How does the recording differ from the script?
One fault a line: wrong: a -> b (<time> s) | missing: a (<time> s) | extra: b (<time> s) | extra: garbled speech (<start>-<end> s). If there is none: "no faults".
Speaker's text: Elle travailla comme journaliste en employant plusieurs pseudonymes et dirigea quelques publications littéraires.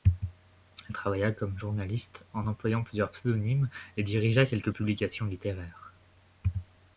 no faults